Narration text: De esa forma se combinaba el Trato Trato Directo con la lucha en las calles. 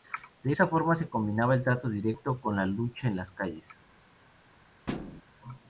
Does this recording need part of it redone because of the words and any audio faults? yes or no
yes